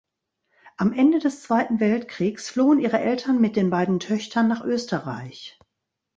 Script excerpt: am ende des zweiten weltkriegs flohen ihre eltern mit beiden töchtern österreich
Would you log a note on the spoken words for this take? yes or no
yes